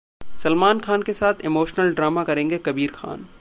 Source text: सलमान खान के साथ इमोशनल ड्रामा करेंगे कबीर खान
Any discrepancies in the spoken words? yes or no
no